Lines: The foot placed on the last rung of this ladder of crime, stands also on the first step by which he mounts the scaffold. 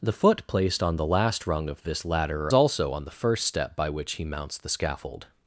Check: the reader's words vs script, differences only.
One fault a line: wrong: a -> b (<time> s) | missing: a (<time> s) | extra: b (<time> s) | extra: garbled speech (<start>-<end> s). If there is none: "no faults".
missing: of crime stands (2.5 s)